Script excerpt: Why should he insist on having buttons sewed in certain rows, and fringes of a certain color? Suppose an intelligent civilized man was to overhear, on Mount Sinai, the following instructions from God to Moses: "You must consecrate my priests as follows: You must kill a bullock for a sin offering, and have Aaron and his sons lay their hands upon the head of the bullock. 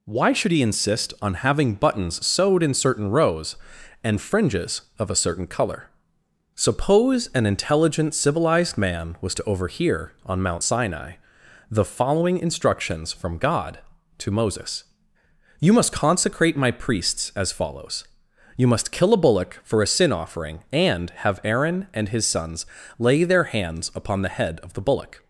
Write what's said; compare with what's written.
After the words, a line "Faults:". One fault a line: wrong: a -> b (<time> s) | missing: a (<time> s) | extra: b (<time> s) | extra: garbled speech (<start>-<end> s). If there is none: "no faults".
Why should he insist on having buttons sewed in certain rows, and fringes of a certain color? Suppose an intelligent civilized man was to overhear, on Mount Sinai, the following instructions from God to Moses: "You must consecrate my priests as follows: You must kill a bullock for a sin offering, and have Aaron and his sons lay their hands upon the head of the bullock.
Faults:
no faults